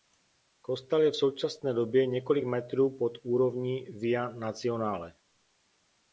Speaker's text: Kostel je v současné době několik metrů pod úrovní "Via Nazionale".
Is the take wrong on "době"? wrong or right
right